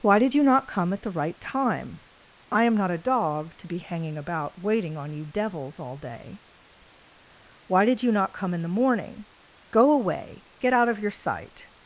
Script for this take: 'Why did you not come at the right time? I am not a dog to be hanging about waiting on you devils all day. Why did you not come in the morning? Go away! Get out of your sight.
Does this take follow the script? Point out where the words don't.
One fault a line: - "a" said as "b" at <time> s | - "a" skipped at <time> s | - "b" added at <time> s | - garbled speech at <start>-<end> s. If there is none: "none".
none